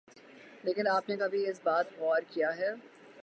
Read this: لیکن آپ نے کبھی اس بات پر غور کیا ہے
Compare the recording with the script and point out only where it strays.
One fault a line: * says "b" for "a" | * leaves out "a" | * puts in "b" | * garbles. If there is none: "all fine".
* leaves out "پر"